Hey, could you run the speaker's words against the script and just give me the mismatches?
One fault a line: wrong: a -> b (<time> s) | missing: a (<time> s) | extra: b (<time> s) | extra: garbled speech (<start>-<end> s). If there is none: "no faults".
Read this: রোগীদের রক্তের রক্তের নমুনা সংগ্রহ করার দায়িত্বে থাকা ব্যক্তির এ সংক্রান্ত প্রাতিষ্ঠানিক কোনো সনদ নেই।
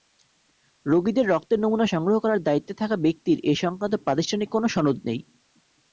missing: রক্তের (1.6 s)